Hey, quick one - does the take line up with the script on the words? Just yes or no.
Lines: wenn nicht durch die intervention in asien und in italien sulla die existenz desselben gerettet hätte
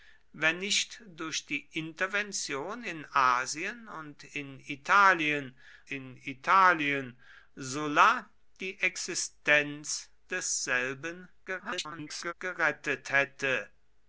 no